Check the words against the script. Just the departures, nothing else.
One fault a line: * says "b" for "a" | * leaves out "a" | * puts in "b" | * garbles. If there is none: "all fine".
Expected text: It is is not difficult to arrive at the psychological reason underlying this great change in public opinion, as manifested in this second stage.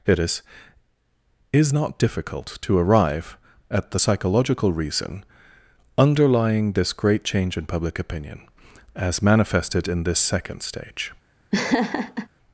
all fine